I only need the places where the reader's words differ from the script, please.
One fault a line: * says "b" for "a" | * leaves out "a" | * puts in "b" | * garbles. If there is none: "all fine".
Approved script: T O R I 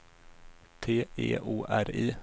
* puts in "E"